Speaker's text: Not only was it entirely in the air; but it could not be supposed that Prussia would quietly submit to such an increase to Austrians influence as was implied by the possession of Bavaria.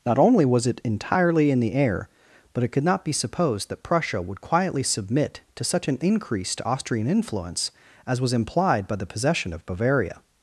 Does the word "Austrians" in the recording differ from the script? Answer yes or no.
yes